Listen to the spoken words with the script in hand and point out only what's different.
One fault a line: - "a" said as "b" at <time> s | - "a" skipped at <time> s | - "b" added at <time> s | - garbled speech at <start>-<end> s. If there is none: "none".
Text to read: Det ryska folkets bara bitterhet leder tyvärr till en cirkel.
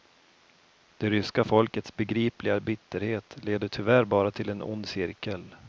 - "bara" said as "begripliga" at 2.0 s
- "bara" added at 4.0 s
- "ond" added at 4.6 s